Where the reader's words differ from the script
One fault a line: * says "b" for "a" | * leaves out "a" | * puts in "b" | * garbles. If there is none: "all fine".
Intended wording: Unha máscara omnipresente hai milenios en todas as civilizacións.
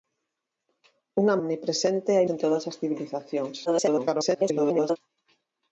* leaves out "máscara"
* leaves out "milenios"
* garbles